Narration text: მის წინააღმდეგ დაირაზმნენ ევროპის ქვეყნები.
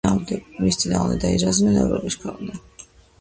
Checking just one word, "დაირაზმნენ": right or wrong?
right